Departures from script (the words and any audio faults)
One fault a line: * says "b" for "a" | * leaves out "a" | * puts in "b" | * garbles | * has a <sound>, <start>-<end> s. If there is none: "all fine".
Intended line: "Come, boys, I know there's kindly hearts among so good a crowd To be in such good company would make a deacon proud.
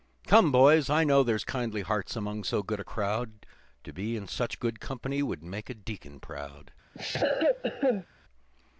* has a cough, 6.9-8.1 s